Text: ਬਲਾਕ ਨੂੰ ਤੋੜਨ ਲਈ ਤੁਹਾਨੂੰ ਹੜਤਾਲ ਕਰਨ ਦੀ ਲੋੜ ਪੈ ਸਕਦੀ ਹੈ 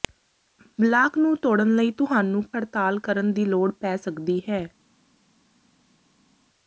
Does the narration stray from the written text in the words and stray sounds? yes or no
no